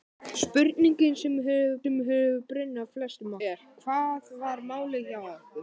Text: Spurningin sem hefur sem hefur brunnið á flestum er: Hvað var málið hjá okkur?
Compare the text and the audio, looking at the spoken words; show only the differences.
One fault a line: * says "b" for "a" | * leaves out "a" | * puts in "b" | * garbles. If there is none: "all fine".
all fine